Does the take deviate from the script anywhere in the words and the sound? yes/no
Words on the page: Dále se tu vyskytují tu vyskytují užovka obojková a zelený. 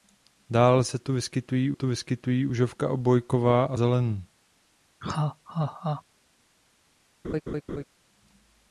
yes